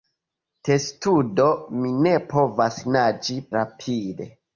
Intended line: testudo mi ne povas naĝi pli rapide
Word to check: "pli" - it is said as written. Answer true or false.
false